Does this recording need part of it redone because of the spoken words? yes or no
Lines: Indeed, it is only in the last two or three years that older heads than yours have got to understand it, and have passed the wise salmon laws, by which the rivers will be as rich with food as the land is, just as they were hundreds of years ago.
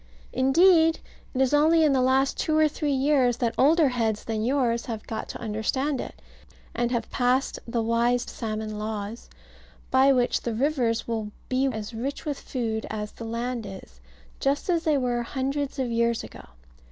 no